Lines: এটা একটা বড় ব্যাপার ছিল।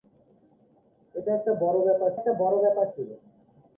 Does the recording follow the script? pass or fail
fail